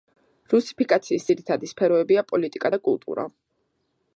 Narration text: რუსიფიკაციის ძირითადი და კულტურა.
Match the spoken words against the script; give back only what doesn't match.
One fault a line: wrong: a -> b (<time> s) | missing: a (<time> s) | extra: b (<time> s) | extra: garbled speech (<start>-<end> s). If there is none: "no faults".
extra: სფეროებია პოლიტიკა (1.7 s)